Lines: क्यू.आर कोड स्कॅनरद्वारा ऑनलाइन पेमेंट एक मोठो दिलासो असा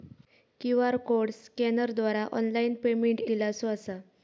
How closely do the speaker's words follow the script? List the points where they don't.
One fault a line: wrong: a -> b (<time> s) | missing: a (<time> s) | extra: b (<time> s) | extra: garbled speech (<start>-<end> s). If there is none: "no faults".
missing: एक मोठो (3.2 s)